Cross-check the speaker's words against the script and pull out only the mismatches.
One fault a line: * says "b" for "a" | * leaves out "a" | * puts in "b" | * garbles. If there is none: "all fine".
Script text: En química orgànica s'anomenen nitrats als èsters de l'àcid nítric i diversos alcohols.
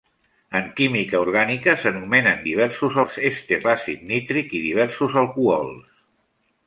* says "diversos" for "nitrats"
* leaves out "de"